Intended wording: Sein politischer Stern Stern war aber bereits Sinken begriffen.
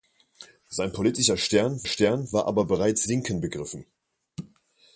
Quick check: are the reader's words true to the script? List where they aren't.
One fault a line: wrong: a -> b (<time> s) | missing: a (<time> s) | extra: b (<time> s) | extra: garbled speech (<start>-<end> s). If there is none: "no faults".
no faults